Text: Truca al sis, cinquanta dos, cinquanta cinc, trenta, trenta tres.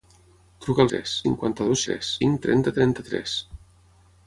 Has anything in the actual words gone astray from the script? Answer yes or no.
yes